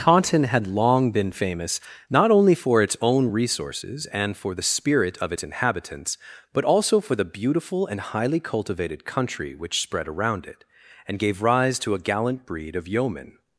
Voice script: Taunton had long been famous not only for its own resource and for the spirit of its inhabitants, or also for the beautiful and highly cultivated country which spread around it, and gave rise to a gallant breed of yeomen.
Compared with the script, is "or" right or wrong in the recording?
wrong